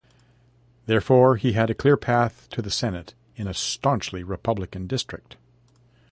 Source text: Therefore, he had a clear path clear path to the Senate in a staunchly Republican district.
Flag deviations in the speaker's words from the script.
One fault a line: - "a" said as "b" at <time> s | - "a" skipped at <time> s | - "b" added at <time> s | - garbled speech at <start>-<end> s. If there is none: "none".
- "clear path" skipped at 2.5 s